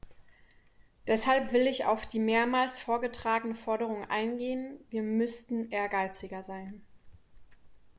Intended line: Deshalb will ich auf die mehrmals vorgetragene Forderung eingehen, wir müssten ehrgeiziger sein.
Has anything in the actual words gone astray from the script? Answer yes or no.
no